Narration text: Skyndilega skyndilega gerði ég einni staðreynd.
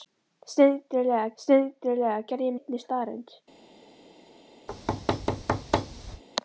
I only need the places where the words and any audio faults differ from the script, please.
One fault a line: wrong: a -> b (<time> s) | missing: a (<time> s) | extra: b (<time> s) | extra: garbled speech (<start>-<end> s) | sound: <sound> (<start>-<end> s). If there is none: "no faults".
sound: thud (4.7-6.2 s)